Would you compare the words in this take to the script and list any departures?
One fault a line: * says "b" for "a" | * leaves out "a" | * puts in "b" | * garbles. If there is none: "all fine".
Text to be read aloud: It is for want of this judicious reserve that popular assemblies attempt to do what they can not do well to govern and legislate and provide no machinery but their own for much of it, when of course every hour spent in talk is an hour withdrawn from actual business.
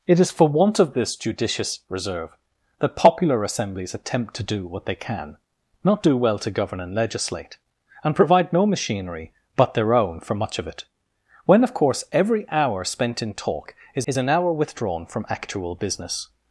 * puts in "is"